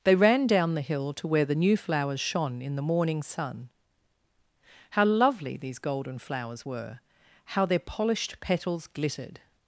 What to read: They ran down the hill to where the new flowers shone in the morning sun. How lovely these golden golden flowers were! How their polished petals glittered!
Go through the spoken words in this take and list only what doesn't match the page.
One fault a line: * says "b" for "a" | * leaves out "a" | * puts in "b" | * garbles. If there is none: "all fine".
* leaves out "golden"